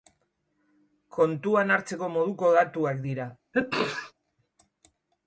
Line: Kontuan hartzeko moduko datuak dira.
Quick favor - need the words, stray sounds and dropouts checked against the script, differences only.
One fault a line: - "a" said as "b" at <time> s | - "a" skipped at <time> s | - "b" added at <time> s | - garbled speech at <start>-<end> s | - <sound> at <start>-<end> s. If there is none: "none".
- sneeze at 3.5-4.1 s